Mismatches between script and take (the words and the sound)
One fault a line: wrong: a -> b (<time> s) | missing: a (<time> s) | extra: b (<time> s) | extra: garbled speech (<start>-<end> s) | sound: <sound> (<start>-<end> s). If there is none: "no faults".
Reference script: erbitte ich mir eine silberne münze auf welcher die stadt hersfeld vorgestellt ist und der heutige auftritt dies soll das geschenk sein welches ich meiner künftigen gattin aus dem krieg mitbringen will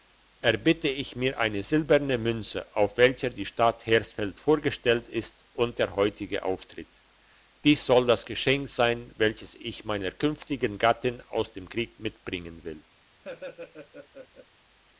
sound: laugh (13.2-14.5 s)